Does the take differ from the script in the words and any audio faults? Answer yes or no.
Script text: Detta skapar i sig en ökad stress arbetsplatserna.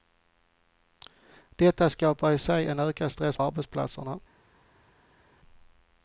no